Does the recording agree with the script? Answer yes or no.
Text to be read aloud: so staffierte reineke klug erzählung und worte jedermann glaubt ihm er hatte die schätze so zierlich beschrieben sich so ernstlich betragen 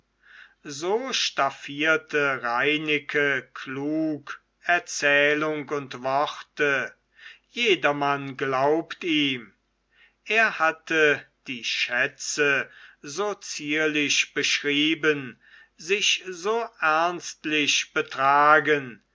yes